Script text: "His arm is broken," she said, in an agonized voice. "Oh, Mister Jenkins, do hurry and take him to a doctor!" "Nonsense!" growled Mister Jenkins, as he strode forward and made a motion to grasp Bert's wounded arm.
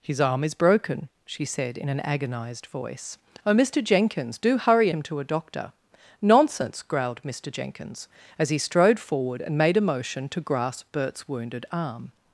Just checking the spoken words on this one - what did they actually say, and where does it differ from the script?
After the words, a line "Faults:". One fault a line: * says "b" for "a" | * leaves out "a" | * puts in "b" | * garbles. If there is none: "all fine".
"His arm is broken," she said, in an agonized voice. "Oh, Mister Jenkins, do hurry him to a doctor!" "Nonsense!" growled Mister Jenkins, as he strode forward and made a motion to grasp Bert's wounded arm.
Faults:
* leaves out "and take"